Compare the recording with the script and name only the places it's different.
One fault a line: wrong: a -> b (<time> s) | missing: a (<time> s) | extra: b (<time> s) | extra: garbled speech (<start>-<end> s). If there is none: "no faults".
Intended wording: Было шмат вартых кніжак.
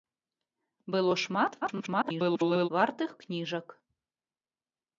extra: garbled speech (1.6-2.7 s)